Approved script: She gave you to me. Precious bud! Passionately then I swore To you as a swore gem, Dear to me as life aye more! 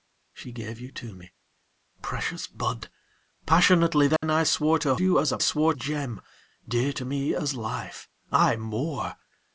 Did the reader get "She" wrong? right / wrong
right